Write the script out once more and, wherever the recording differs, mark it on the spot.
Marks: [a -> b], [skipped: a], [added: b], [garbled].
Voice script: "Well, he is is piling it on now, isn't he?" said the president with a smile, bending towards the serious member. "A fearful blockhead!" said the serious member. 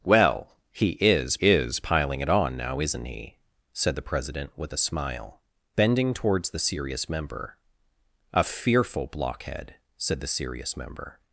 "Well, he is is piling it on now, isn't he?" said the president with a smile, bending towards the serious member. "A fearful blockhead!" said the serious member.